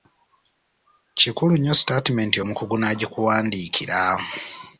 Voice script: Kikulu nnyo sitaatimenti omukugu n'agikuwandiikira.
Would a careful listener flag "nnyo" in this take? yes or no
no